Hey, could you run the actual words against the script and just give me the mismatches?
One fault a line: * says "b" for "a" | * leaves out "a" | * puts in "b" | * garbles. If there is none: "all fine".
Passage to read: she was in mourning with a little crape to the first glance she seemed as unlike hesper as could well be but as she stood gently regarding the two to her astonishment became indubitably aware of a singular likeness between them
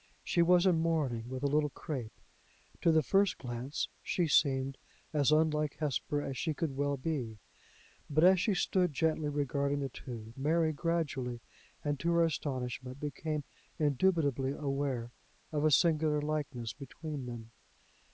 * puts in "she"
* puts in "mary gradually and"